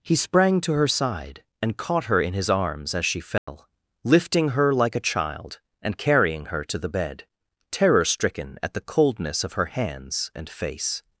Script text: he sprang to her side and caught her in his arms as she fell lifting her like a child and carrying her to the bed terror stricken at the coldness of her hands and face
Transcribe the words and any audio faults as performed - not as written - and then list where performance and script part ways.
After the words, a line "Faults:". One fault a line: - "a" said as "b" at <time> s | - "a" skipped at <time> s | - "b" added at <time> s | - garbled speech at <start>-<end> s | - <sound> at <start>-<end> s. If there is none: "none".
he sprang to her side and caught her in his arms as she fell lifting her like a child and carrying her to the bed terror stricken at the coldness of her hands and face
Faults:
- dropout at 3.4-3.5 s